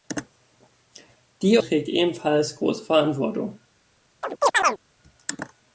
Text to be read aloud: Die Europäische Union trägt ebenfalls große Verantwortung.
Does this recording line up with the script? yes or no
no